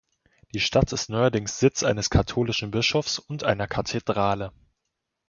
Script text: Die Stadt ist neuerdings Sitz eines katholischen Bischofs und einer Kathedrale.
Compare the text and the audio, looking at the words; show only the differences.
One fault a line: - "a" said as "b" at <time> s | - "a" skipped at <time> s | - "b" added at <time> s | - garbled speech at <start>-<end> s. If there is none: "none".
none